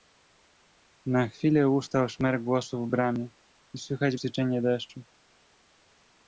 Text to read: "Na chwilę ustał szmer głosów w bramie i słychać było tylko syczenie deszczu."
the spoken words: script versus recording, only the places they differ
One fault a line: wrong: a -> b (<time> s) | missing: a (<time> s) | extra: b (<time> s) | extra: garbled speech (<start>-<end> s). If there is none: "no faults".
missing: było tylko (4.2 s)